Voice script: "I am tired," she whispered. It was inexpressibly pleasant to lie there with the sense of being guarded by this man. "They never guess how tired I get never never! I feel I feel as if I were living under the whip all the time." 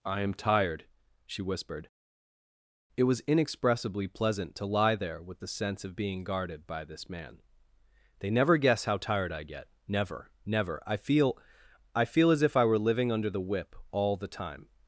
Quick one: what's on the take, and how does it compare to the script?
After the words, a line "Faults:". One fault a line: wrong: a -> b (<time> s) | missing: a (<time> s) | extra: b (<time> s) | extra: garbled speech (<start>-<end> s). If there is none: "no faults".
"I am tired," she whispered. It was inexpressibly pleasant to lie there with the sense of being guarded by this man. "They never guess how tired I get never never! I feel I feel as if I were living under the whip all the time."
Faults:
no faults